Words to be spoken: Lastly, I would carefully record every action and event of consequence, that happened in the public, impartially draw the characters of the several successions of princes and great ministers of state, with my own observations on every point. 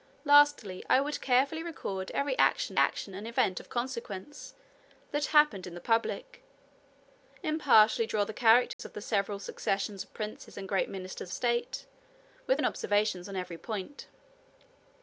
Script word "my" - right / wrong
wrong